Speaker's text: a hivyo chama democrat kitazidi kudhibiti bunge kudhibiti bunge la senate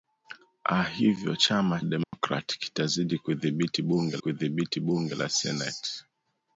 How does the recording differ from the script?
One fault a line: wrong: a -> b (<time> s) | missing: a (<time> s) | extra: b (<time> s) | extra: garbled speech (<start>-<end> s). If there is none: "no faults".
no faults